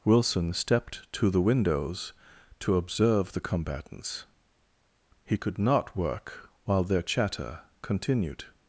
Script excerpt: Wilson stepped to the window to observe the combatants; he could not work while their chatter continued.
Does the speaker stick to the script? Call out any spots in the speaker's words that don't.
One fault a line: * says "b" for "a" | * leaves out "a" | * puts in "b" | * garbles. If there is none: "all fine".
* says "windows" for "window"